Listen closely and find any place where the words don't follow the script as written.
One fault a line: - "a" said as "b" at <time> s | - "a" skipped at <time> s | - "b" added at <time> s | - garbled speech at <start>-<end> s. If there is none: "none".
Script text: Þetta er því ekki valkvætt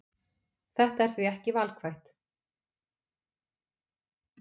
none